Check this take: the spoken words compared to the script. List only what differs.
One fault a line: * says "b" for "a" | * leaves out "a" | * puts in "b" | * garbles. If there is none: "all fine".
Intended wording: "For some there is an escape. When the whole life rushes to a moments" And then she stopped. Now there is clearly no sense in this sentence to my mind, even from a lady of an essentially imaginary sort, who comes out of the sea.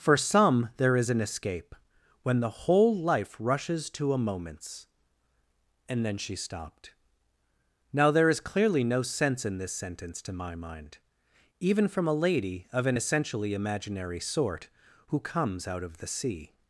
all fine